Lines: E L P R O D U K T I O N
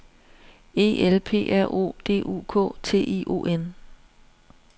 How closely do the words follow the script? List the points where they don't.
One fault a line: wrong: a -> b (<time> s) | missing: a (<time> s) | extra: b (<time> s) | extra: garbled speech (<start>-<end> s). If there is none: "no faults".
no faults